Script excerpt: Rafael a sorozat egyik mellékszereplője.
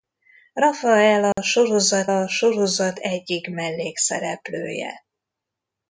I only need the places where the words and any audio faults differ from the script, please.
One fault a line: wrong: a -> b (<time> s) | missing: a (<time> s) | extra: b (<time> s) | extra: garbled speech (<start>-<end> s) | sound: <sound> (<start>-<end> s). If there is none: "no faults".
sound: dropout (1.3-1.4 s)
extra: a sorozat (2.1 s)